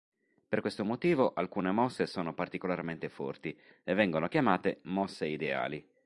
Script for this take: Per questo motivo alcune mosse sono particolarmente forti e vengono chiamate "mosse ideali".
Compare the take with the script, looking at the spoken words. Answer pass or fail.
pass